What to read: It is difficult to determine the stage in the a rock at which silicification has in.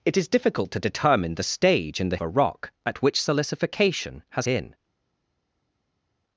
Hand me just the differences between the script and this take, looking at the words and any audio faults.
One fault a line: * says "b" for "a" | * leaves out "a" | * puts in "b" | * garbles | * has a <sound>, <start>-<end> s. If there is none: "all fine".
all fine